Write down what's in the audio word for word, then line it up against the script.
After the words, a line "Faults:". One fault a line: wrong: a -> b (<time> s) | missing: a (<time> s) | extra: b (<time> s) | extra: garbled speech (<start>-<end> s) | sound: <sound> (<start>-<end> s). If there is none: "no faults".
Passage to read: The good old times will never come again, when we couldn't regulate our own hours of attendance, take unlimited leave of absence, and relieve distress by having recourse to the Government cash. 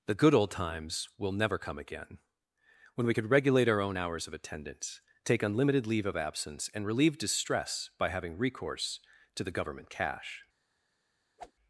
The good old times will never come again, when we could regulate our own hours of attendance, take unlimited leave of absence, and relieve distress by having recourse to the Government cash.
Faults:
wrong: couldn't -> could (3.1 s)
sound: whoosh (11.4-11.5 s)